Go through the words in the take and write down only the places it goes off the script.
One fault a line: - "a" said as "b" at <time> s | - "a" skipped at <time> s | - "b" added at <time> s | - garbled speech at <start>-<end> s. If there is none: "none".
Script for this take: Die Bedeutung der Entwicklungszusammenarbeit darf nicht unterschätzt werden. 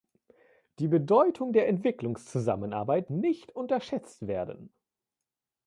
- "darf" skipped at 3.1 s